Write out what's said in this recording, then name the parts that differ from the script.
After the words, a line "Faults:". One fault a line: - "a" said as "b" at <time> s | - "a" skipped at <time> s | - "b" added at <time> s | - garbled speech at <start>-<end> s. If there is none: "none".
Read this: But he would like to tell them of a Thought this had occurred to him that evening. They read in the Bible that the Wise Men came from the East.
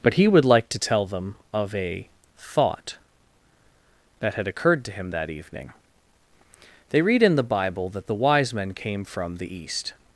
But he would like to tell them of a Thought that had occurred to him that evening. They read in the Bible that the Wise Men came from the East.
Faults:
- "this" said as "that" at 4.2 s